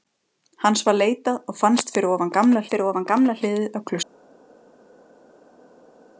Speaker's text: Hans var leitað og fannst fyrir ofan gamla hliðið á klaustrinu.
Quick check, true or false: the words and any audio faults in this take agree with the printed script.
false